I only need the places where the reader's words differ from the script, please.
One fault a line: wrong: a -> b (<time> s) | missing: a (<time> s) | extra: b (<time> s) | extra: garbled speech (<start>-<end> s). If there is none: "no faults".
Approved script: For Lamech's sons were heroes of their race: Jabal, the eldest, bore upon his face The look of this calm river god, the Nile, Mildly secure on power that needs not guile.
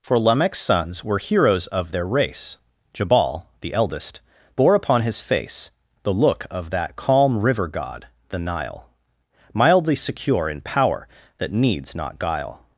wrong: this -> that (6.7 s)
wrong: on -> in (10.5 s)